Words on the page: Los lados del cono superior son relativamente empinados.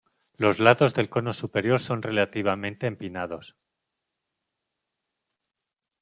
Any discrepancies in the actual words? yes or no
no